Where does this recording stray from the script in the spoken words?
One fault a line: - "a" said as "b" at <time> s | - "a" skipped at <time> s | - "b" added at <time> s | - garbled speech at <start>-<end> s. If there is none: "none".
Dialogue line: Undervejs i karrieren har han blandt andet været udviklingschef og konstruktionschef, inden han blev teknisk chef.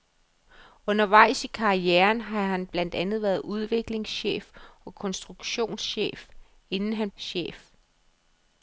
- "blev teknisk" skipped at 7.1 s